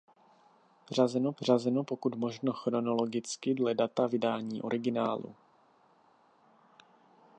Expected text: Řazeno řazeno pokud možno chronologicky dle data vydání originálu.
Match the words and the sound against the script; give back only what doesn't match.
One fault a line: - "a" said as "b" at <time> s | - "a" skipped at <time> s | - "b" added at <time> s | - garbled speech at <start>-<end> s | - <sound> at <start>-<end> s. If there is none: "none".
none